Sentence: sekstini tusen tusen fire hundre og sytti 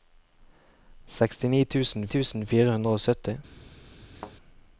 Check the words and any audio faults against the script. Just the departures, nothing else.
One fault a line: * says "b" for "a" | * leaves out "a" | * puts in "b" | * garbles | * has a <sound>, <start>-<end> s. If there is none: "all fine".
* has a thud, 4.1-4.4 s